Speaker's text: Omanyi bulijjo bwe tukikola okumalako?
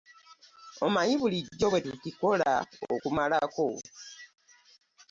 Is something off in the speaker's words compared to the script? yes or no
no